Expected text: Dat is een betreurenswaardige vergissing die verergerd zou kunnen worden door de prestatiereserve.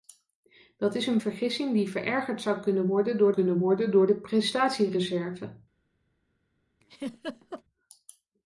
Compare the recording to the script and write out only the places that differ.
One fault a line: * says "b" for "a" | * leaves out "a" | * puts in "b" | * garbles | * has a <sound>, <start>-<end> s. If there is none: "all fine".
* leaves out "betreurenswaardige"
* puts in "kunnen worden door"
* has a laugh, 6.8-7.6 s